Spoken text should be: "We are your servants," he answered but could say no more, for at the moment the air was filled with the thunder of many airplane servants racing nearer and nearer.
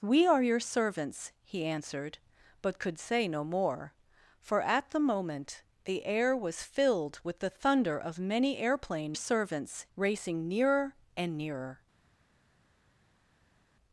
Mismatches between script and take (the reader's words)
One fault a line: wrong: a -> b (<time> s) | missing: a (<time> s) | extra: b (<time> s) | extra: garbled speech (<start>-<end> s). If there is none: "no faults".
no faults